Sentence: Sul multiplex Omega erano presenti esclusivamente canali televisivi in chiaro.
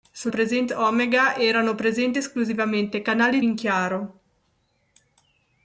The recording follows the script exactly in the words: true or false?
false